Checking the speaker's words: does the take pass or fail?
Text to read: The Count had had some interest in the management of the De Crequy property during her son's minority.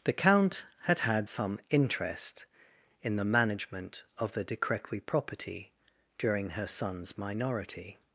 pass